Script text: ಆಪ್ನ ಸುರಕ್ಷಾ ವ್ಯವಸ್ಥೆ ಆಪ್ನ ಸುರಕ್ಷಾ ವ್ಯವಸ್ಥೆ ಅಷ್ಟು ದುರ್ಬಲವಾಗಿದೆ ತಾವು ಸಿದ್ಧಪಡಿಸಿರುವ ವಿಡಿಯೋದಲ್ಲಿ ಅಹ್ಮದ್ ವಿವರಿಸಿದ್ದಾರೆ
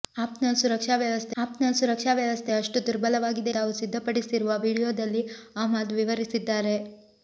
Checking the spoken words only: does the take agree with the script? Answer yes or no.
yes